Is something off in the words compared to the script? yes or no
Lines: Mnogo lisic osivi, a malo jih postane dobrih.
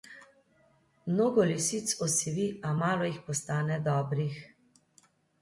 no